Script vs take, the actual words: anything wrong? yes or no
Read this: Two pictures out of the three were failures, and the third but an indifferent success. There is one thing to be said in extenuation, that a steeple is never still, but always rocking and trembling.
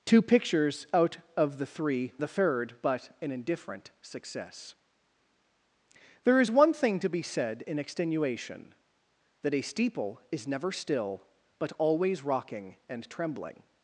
yes